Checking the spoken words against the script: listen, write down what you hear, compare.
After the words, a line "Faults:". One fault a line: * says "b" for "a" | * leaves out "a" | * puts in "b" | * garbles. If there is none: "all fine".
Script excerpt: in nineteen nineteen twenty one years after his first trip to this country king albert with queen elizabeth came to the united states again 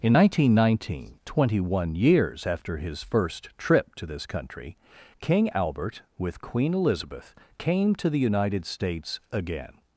in nineteen nineteen twenty one years after his first trip to this country king albert with queen elizabeth came to the united states again
Faults:
all fine